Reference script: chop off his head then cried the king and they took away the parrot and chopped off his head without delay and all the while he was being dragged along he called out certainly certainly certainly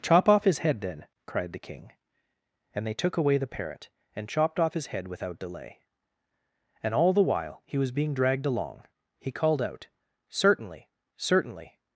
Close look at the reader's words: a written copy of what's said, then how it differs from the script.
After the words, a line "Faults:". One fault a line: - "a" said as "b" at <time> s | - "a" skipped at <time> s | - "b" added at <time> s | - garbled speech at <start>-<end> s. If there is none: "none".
chop off his head then cried the king and they took away the parrot and chopped off his head without delay and all the while he was being dragged along he called out certainly certainly
Faults:
- "certainly" skipped at 11.8 s